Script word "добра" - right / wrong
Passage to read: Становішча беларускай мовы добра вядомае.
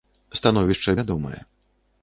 wrong